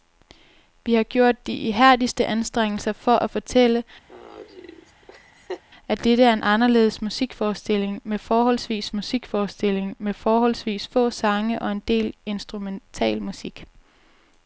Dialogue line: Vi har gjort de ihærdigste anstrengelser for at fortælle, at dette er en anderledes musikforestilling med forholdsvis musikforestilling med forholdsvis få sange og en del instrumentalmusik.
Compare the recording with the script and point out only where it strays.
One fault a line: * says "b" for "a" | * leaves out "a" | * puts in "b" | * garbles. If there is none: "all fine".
all fine